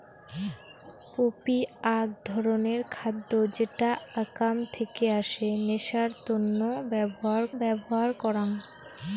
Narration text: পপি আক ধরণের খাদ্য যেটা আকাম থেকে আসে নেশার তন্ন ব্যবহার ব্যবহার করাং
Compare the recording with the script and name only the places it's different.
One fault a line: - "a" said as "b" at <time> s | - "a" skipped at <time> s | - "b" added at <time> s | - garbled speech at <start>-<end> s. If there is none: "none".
none